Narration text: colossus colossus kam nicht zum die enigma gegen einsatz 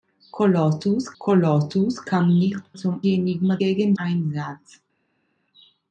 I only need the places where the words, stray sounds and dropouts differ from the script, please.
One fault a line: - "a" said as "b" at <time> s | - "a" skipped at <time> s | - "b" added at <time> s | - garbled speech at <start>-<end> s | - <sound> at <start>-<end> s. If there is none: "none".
none